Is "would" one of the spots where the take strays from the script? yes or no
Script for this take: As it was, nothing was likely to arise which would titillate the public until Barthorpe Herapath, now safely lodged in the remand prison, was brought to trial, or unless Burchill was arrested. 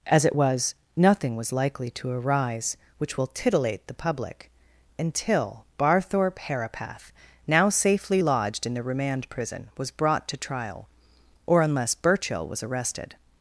yes